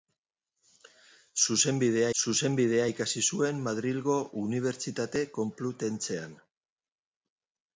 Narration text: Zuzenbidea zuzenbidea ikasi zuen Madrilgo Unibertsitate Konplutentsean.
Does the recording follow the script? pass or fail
pass